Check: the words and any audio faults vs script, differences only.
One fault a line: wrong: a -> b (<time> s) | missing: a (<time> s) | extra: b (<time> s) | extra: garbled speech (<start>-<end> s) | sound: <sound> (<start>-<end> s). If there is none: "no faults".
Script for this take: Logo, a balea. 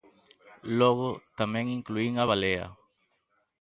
extra: tamén incluín (1.4 s)